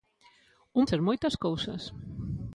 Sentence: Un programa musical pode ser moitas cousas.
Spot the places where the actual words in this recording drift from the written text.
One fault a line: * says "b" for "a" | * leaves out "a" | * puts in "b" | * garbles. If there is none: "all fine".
* leaves out "programa musical pode"